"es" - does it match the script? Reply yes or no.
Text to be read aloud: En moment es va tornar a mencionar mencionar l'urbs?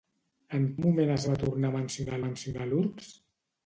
yes